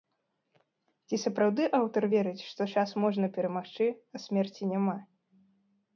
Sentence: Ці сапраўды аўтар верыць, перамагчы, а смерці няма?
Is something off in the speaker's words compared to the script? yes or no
yes